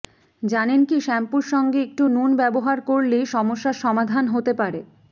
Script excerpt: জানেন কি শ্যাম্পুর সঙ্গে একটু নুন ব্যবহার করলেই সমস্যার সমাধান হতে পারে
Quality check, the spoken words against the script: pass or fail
pass